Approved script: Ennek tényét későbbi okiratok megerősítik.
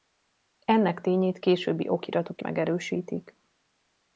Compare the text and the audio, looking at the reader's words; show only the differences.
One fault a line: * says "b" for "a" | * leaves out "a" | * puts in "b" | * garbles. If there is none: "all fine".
all fine